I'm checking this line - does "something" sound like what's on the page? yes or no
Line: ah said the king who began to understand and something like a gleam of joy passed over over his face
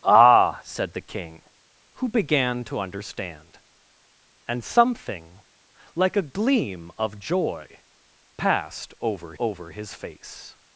yes